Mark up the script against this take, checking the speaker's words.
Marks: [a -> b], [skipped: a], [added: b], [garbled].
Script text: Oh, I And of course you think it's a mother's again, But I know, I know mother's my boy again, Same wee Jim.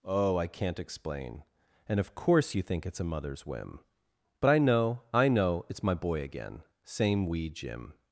Oh, I [added: can't explain] And of course you think it's a mother's [again, -> whim] But I know, I know [mother's -> it's] my boy again, Same wee Jim.